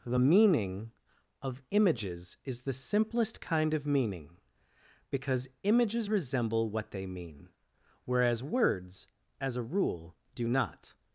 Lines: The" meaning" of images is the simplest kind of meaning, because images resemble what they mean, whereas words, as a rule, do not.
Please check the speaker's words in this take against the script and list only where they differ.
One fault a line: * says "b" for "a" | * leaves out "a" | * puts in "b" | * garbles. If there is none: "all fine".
all fine